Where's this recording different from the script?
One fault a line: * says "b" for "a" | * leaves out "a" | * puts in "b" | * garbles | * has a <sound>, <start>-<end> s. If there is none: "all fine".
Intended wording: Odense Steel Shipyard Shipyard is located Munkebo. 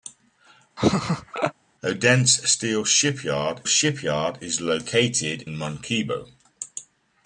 * has a laugh, 0.8-1.5 s